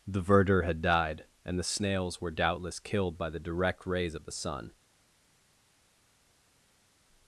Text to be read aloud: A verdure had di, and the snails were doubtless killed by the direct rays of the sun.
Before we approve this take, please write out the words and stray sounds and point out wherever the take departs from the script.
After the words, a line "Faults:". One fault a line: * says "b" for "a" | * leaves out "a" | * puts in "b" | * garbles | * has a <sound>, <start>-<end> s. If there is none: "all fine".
The verdure had died, and the snails were doubtless killed by the direct rays of the sun.
Faults:
* says "The" for "A"
* says "died" for "di"